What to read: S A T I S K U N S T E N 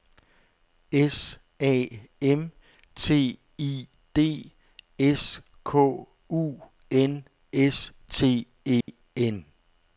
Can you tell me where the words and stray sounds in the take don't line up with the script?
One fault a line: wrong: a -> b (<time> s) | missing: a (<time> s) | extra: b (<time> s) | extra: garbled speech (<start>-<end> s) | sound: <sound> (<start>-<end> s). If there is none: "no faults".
extra: M (2.2 s)
extra: D (4.2 s)
sound: dropout (8.8-8.9 s)